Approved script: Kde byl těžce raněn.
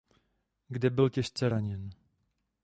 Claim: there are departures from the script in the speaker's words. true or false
false